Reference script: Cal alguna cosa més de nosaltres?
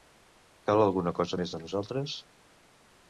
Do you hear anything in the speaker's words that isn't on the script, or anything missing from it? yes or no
no